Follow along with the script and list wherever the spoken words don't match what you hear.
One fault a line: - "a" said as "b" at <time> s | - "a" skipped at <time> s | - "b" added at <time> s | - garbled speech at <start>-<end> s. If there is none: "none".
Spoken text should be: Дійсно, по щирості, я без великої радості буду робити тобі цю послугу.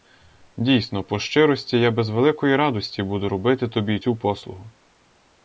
none